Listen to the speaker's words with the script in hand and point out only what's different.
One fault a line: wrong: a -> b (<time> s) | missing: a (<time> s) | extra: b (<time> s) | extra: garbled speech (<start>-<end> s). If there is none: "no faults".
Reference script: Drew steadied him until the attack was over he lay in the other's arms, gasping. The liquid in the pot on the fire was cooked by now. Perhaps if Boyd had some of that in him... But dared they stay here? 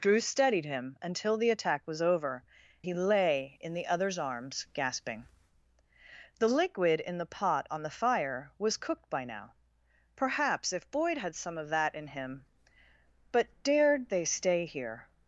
no faults